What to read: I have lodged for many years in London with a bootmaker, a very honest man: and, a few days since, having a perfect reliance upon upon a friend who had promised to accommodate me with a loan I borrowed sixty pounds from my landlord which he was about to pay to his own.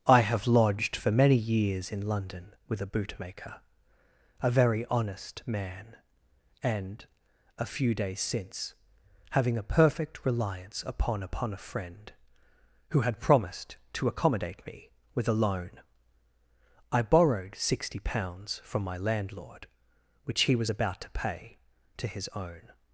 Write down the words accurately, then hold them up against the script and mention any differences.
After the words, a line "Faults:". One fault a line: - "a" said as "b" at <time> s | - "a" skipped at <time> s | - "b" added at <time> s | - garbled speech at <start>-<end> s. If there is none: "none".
I have lodged for many years in London with a bootmaker, a very honest man: and, a few days since, having a perfect reliance upon upon a friend who had promised to accommodate me with a loan I borrowed sixty pounds from my landlord which he was about to pay to his own.
Faults:
none